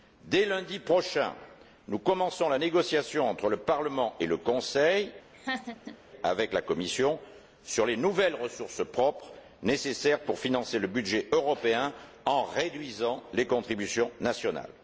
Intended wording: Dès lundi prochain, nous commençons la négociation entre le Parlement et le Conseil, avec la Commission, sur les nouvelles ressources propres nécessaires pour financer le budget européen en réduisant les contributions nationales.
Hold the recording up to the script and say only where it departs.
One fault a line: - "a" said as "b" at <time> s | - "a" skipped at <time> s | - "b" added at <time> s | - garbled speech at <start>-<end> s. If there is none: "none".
none